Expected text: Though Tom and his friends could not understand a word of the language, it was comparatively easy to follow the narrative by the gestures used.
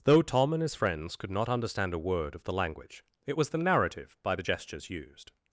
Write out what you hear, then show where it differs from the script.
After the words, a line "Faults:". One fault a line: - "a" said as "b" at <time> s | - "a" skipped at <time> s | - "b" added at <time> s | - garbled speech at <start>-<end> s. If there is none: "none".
Though Tom and his friends could not understand a word of the language, it was the narrative by the gestures used.
Faults:
- "comparatively easy to follow" skipped at 3.5 s